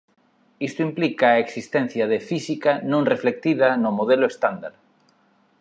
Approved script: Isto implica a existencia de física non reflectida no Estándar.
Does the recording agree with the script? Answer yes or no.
no